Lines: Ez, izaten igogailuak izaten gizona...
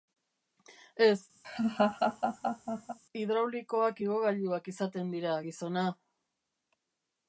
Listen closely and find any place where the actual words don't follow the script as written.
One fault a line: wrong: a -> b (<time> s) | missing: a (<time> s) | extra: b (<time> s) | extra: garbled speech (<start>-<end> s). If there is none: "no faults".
wrong: izaten -> hidraulikoak (3.2 s)
extra: dira (5.2 s)